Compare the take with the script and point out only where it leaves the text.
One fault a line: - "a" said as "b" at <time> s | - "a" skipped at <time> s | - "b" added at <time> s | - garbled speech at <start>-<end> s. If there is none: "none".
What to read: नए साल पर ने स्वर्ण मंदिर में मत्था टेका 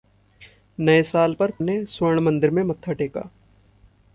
none